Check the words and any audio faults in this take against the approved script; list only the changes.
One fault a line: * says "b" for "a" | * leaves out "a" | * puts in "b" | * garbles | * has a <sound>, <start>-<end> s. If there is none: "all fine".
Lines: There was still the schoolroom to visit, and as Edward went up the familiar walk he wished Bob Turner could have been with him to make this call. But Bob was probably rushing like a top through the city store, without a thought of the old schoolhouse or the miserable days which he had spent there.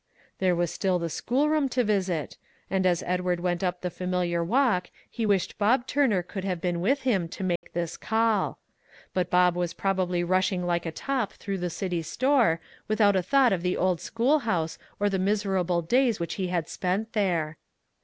* has a dropout, 7.6-7.6 s